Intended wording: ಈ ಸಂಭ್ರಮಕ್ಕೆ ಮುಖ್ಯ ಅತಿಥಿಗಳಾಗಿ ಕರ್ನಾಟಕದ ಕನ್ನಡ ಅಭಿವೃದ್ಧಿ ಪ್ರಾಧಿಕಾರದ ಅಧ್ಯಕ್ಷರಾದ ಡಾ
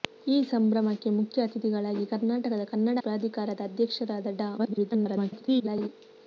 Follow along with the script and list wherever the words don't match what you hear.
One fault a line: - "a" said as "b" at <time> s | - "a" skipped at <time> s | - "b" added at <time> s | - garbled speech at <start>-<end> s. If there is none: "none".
- "ಅಭಿವೃದ್ಧಿ" skipped at 3.0 s
- garbled speech at 4.6-5.9 s